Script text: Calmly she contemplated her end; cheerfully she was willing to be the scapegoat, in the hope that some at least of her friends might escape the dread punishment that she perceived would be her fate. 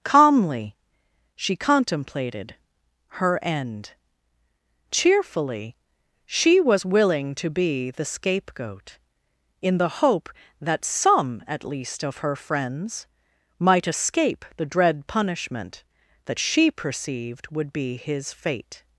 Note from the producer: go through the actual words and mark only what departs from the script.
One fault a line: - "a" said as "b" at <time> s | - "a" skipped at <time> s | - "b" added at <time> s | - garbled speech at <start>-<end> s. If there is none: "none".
- "her" said as "his" at 18.0 s